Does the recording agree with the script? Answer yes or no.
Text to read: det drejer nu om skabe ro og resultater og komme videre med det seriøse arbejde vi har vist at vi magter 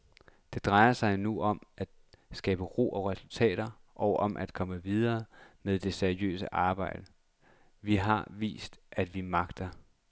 no